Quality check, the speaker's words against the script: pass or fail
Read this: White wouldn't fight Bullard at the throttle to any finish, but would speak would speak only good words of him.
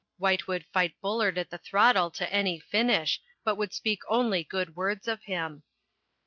fail